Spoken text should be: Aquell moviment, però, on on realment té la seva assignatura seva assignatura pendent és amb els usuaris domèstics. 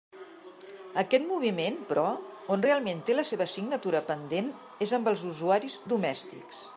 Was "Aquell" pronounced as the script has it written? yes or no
no